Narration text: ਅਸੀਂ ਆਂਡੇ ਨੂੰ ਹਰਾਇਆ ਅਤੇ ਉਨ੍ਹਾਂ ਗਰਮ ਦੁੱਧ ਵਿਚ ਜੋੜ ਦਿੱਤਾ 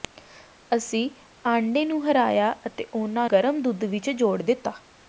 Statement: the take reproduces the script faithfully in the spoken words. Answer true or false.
true